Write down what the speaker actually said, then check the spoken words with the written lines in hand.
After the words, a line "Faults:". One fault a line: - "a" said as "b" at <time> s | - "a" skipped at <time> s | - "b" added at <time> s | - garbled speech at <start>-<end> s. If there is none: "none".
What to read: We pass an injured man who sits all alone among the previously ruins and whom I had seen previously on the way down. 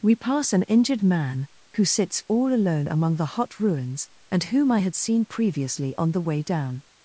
We pass an injured man who sits all alone among the hot ruins and whom I had seen previously on the way down.
Faults:
- "previously" said as "hot" at 3.4 s